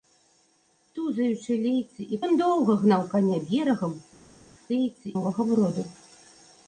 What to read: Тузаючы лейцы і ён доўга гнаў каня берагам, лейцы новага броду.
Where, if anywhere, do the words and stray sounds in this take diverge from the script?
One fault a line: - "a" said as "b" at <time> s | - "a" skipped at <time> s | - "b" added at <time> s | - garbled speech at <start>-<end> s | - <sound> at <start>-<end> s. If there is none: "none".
none